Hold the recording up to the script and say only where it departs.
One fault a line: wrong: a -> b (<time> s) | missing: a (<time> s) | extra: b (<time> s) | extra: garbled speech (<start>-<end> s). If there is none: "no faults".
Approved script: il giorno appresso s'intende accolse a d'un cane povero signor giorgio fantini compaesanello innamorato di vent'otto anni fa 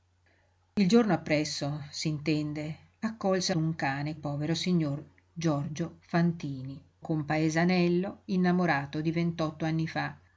no faults